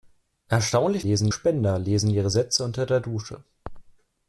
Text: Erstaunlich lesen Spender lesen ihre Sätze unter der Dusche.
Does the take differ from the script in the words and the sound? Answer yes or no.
no